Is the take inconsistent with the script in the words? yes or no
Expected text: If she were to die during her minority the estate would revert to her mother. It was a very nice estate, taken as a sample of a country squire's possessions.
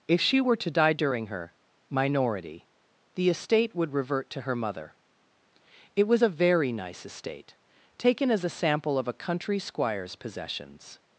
no